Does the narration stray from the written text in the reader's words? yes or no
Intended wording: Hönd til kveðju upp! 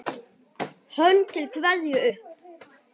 no